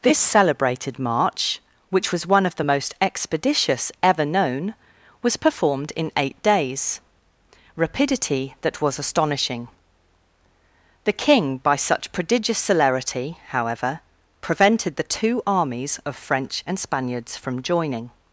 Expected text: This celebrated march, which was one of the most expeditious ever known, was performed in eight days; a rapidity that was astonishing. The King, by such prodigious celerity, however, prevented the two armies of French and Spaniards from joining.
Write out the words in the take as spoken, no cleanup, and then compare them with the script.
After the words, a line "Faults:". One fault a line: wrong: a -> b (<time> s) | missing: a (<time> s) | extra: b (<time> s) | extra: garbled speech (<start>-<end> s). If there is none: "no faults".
This celebrated march, which was one of the most expeditious ever known, was performed in eight days; rapidity that was astonishing. The King, by such prodigious celerity, however, prevented the two armies of French and Spaniards from joining.
Faults:
missing: a (7.0 s)